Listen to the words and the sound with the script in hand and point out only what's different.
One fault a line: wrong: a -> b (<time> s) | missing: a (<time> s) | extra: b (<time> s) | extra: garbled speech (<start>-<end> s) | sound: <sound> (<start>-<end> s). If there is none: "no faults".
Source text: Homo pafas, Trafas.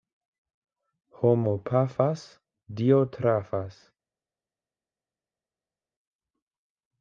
extra: Dio (2.7 s)